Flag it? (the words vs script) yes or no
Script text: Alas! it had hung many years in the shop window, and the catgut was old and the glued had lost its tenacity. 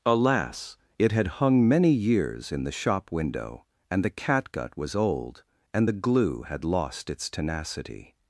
yes